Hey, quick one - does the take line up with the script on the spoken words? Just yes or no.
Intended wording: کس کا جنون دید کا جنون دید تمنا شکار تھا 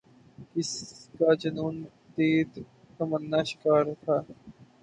no